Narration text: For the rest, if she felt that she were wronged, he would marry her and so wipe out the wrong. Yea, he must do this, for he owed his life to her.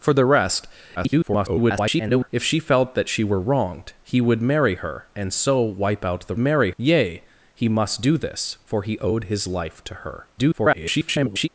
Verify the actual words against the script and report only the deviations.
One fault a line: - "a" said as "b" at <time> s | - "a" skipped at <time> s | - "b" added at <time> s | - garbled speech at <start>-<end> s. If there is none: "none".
- garbled speech at 1.0-2.3 s
- "wrong" said as "marry" at 6.4 s
- garbled speech at 10.4-11.5 s